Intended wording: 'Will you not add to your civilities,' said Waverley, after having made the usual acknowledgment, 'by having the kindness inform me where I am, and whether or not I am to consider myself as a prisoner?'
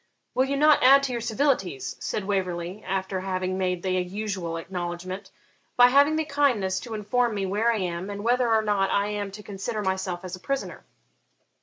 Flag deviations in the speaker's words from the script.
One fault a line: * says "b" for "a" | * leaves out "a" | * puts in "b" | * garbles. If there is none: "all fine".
* puts in "to"